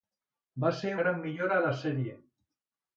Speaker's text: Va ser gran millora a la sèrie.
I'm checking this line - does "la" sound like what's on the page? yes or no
yes